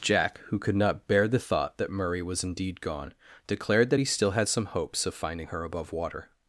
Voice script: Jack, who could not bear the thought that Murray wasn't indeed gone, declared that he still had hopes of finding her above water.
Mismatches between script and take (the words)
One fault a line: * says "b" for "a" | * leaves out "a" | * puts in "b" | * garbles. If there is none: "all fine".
* says "was" for "wasn't"
* puts in "some"